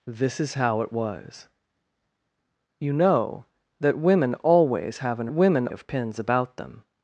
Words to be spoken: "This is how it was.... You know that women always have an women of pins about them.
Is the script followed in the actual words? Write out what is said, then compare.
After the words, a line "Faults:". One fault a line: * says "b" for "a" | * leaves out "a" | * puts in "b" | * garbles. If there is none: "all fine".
"This is how it was.... You know that women always have an women of pins about them.
Faults:
all fine